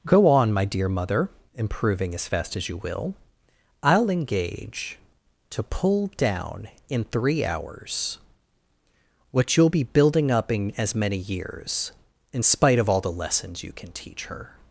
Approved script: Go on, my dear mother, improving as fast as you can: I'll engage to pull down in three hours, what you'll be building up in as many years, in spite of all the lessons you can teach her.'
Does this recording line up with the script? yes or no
no